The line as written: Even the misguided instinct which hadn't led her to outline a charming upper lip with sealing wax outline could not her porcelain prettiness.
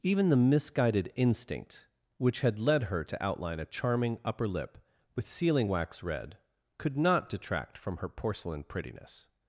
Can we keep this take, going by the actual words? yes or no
no